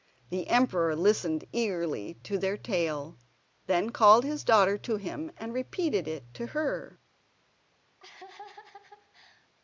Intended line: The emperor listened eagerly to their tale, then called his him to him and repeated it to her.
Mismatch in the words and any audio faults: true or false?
true